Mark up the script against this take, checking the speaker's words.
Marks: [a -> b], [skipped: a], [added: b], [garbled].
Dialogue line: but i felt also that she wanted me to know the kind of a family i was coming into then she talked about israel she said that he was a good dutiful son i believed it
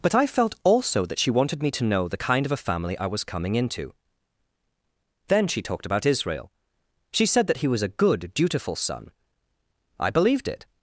but i felt also that she wanted me to know the kind of a family i was coming into then she talked about israel she said that he was a good dutiful son i believed it